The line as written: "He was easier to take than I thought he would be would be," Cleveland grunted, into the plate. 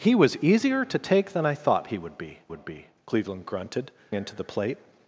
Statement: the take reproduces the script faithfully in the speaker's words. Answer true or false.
true